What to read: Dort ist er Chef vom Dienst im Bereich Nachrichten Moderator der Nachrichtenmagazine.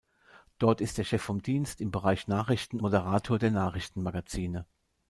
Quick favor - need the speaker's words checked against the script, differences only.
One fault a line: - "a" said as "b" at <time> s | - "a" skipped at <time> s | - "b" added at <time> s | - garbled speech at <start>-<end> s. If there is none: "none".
none